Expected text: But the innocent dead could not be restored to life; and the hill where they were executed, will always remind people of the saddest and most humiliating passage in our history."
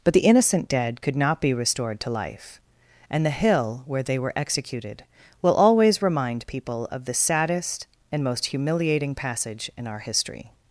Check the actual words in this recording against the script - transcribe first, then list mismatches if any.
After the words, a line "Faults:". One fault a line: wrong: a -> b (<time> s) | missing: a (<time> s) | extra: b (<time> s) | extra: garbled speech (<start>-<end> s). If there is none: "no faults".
But the innocent dead could not be restored to life; and the hill where they were executed, will always remind people of the saddest and most humiliating passage in our history."
Faults:
no faults